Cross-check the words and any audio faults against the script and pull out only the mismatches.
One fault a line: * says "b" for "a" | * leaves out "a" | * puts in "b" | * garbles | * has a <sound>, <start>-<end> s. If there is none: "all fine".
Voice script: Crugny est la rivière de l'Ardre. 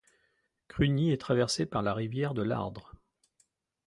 * puts in "traversée par"